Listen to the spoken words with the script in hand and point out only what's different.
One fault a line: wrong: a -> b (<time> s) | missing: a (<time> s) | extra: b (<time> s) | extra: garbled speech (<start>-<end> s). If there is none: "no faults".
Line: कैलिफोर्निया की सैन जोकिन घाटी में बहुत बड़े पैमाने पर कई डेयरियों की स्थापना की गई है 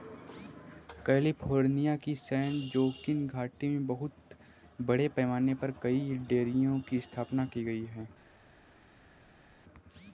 no faults